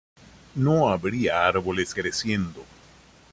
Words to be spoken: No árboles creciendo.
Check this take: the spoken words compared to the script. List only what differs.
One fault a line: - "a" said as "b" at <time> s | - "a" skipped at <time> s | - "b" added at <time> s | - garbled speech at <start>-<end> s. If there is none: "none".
- "habría" added at 0.9 s